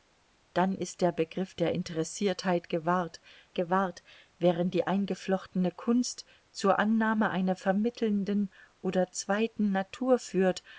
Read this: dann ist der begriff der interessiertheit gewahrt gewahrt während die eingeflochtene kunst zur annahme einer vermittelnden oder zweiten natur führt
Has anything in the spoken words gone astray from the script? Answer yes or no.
no